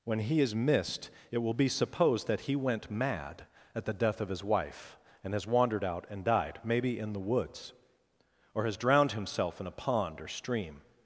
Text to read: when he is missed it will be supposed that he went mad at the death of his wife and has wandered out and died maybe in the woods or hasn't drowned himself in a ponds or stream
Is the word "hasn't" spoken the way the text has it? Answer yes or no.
no